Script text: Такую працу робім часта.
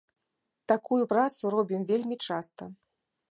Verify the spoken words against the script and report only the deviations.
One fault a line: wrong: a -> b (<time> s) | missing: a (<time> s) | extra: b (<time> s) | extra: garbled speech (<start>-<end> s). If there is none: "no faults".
extra: вельмі (1.9 s)